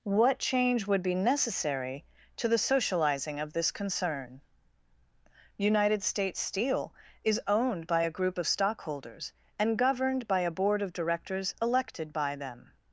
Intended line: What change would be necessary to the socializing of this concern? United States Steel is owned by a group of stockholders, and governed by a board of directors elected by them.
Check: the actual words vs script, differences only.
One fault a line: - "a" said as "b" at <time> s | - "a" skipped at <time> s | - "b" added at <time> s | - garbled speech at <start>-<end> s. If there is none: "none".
none